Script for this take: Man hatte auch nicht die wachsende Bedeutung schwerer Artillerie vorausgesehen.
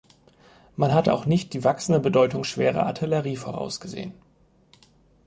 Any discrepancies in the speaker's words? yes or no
no